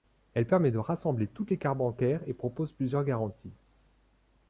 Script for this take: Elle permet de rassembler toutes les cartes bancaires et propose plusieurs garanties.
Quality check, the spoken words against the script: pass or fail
pass